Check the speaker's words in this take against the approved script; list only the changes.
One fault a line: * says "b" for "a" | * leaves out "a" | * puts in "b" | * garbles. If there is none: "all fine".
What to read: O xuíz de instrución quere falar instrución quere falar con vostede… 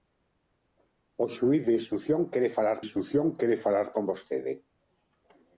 all fine